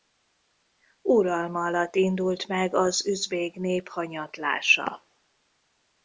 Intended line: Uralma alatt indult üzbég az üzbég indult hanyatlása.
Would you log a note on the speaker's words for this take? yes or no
yes